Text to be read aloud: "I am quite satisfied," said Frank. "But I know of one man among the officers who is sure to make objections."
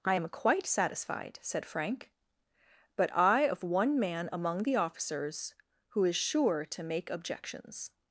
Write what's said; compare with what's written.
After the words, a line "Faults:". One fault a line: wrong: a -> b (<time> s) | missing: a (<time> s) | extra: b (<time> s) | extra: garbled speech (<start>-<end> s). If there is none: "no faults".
"I am quite satisfied," said Frank. "But I of one man among the officers who is sure to make objections."
Faults:
missing: know (3.5 s)